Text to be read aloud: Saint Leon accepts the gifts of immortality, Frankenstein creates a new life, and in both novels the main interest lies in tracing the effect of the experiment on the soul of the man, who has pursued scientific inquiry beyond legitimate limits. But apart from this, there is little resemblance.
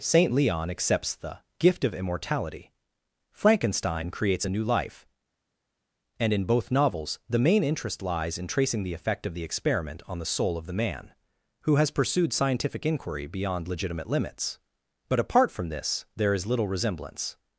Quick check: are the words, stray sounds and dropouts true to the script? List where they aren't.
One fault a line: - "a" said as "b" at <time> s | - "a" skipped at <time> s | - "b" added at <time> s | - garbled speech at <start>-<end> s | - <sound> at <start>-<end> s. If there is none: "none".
- "gifts" said as "gift" at 1.6 s